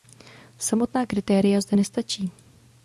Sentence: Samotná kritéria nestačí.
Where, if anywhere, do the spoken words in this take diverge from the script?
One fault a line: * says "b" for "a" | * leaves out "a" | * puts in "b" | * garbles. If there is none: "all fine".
* puts in "zde"